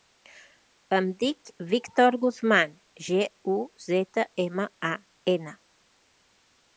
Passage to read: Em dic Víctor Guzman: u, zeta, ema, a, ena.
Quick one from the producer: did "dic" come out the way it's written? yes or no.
yes